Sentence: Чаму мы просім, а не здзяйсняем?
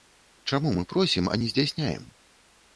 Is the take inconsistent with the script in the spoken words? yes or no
no